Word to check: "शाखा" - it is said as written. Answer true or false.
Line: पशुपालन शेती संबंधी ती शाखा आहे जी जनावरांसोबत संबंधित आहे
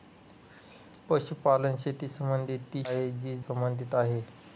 false